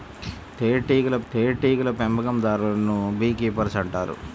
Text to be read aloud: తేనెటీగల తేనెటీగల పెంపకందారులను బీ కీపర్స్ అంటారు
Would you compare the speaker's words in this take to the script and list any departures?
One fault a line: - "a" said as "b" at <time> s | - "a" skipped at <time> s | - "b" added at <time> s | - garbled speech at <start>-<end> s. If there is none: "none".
none